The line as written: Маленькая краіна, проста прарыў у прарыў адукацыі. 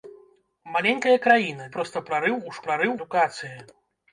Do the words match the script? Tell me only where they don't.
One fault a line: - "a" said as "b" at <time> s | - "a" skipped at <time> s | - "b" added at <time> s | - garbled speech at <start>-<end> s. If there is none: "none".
none